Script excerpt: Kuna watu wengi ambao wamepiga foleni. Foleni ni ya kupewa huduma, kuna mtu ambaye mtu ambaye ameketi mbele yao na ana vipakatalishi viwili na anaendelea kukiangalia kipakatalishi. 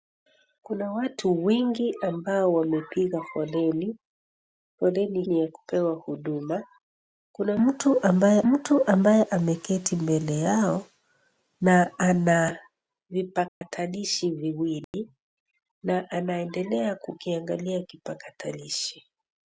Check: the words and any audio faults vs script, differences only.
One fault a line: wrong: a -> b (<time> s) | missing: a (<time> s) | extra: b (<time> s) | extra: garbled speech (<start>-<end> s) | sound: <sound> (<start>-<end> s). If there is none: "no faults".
sound: dropout (13.5-13.6 s)
sound: dropout (14.8-14.9 s)